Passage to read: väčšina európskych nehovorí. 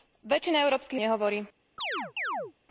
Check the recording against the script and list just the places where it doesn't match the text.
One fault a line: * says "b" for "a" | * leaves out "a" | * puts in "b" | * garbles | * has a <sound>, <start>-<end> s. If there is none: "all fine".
* has a chirp, 1.8-2.5 s